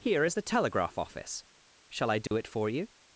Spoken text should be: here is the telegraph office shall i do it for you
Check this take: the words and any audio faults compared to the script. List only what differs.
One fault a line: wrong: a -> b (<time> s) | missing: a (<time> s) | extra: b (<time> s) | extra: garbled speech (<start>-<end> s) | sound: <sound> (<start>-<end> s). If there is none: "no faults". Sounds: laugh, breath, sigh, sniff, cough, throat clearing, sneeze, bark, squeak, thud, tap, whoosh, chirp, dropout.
sound: dropout (2.3-2.3 s)